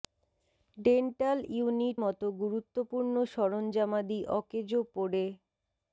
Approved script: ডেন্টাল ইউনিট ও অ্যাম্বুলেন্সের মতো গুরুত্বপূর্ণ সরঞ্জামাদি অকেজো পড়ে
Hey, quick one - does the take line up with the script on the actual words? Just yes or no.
no